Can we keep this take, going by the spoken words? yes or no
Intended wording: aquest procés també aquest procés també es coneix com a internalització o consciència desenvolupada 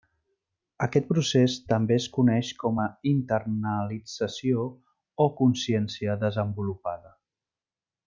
no